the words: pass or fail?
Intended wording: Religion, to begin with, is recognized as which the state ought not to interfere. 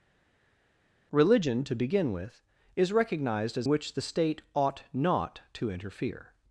pass